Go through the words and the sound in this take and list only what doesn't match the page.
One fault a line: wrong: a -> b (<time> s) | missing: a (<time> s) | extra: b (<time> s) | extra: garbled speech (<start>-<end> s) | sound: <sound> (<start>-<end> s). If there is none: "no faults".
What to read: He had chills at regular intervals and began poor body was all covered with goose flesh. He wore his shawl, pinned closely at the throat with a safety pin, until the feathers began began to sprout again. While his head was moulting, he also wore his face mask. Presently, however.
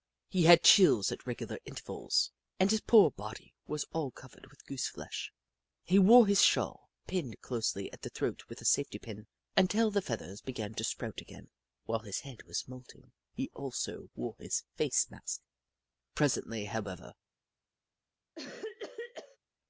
wrong: began -> his (2.7 s)
missing: began (10.7 s)
sound: cough (18.4-19.4 s)